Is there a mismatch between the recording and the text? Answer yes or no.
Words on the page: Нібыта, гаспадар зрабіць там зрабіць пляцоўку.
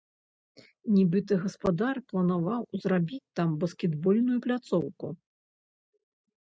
yes